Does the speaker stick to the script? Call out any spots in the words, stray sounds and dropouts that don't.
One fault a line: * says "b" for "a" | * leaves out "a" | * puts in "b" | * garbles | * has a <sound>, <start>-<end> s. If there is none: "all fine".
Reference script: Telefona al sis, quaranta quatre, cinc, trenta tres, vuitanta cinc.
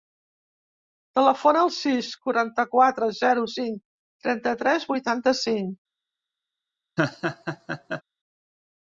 * puts in "zero"
* has a laugh, 7.0-8.0 s